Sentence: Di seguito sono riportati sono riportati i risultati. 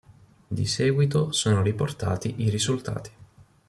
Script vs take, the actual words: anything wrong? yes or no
yes